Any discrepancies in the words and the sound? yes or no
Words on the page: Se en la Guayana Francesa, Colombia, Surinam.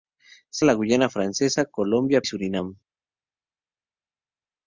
no